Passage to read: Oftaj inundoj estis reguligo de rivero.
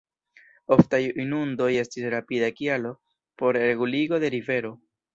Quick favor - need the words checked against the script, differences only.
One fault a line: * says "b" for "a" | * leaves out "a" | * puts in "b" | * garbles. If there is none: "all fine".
* puts in "rapida kialo por"